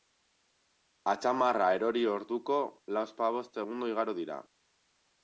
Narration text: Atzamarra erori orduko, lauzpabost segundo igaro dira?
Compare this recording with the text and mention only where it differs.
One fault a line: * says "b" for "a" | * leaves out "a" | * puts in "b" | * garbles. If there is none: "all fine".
all fine